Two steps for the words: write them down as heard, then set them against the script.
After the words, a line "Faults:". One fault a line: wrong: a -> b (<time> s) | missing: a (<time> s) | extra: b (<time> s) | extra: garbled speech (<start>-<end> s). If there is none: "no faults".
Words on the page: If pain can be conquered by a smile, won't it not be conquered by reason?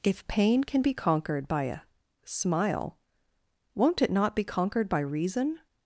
If pain can be conquered by a smile, won't it not be conquered by reason?
Faults:
no faults